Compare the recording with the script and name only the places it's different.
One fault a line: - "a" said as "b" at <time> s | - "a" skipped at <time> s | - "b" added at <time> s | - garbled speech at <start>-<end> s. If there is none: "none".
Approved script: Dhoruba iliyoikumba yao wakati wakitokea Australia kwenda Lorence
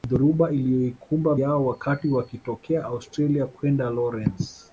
none